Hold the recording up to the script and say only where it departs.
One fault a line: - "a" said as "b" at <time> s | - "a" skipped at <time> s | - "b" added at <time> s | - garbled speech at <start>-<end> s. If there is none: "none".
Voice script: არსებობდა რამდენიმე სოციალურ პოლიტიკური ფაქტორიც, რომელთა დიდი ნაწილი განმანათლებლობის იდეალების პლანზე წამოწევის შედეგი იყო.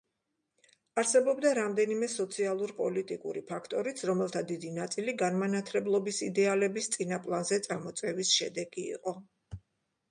- "წინა" added at 7.0 s